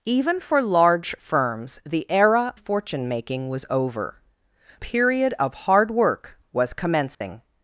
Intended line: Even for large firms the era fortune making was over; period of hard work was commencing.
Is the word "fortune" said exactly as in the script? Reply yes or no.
yes